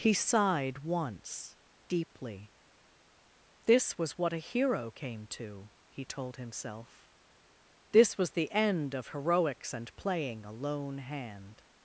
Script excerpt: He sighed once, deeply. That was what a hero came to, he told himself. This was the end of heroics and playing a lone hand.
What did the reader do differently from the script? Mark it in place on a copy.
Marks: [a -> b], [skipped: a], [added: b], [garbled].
He sighed once, deeply. [That -> This] was what a hero came to, he told himself. This was the end of heroics and playing a lone hand.